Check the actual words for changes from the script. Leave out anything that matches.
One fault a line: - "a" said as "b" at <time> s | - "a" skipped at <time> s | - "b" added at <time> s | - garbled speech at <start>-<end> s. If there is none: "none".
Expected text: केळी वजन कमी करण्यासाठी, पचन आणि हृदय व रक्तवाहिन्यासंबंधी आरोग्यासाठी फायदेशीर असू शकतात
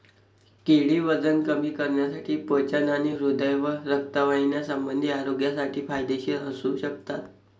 none